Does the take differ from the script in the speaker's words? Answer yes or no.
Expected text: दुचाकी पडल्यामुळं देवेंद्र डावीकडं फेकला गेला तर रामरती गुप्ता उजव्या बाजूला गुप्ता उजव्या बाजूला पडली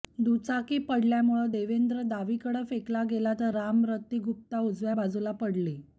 yes